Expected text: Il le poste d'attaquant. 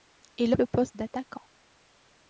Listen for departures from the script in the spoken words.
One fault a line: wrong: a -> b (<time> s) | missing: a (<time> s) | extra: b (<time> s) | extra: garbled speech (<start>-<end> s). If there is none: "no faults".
no faults